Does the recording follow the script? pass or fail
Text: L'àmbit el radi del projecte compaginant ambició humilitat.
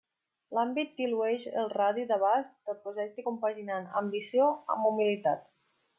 fail